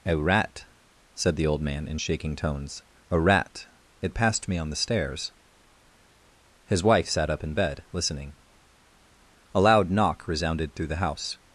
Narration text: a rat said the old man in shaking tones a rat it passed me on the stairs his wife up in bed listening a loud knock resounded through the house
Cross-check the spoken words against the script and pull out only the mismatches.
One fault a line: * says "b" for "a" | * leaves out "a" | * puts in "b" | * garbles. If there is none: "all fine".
* puts in "sat"